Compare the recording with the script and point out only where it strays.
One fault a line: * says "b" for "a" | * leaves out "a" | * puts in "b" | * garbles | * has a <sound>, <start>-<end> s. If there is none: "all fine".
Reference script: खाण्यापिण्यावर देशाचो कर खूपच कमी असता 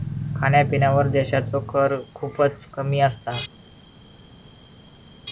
all fine